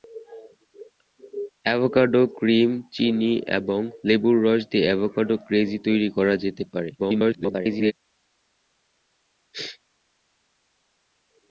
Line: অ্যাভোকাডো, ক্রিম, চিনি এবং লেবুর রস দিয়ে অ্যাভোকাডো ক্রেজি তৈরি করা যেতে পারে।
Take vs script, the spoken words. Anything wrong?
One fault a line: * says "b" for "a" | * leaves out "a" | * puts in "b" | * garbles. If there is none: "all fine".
* garbles